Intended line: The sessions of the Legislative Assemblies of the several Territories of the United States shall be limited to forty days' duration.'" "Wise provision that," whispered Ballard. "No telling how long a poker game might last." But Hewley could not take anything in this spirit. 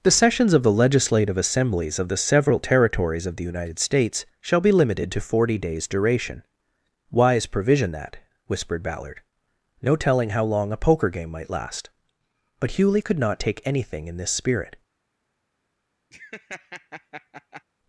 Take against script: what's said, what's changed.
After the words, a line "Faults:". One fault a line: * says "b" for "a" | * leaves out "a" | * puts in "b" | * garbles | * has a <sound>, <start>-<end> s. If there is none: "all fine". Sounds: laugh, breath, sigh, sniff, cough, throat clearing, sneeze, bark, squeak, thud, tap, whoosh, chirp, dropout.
The sessions of the Legislative Assemblies of the several Territories of the United States shall be limited to forty days' duration.'" "Wise provision that," whispered Ballard. "No telling how long a poker game might last." But Hewley could not take anything in this spirit.
Faults:
* has a laugh, 16.1-17.6 s